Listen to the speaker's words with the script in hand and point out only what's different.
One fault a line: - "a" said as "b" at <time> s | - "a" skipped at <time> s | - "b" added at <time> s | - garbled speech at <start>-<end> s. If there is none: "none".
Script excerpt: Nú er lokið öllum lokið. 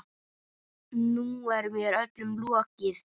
- "lokið" said as "mér" at 1.8 s